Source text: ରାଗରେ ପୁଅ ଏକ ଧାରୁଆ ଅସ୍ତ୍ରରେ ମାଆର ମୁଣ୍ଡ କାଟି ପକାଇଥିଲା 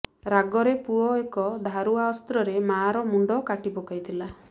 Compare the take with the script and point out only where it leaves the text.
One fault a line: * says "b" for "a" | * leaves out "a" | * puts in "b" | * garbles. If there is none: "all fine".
all fine